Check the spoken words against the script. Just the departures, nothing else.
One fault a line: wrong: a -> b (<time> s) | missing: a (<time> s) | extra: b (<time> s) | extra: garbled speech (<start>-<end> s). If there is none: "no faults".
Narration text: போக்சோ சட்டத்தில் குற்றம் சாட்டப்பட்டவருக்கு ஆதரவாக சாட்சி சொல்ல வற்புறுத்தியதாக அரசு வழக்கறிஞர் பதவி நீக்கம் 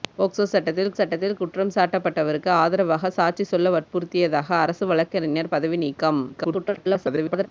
extra: சட்டத்தில் (1.0 s)
extra: garbled speech (6.3-7.5 s)